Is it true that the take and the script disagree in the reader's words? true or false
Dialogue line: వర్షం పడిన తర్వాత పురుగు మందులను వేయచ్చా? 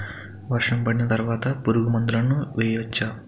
false